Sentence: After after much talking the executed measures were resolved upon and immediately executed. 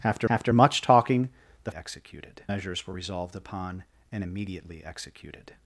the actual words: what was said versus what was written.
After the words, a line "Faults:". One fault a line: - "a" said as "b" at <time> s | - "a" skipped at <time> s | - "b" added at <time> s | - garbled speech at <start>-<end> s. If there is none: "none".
After after much talking the executed measures were resolved upon and immediately executed.
Faults:
none